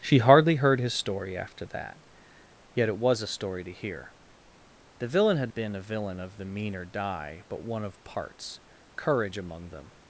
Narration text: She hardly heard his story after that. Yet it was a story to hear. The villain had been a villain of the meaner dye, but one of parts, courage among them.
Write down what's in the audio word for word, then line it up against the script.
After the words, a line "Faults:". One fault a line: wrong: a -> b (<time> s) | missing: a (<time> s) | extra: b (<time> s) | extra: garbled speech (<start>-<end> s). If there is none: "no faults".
She hardly heard his story after that. Yet it was a story to hear. The villain had been a villain of the meaner dye, but one of parts, courage among them.
Faults:
no faults